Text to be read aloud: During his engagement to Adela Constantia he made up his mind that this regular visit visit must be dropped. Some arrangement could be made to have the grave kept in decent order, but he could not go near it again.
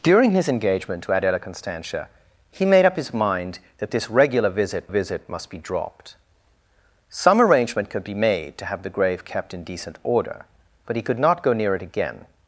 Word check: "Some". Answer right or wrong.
right